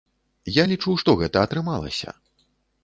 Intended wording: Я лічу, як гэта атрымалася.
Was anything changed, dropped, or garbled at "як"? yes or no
yes